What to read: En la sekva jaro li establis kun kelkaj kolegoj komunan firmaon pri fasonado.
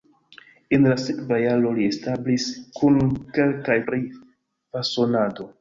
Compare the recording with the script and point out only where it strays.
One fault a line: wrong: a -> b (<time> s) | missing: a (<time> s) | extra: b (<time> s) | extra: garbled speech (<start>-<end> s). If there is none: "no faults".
missing: kolegoj komunan firmaon (3.8 s)